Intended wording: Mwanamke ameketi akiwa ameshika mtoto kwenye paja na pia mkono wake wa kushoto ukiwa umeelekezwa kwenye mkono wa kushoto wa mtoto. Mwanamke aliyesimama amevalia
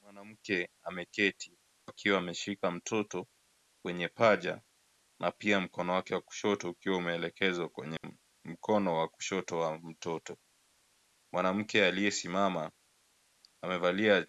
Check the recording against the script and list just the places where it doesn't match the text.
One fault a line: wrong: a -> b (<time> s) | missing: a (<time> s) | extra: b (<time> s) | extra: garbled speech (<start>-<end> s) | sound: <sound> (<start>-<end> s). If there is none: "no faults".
sound: dropout (8.0-8.0 s)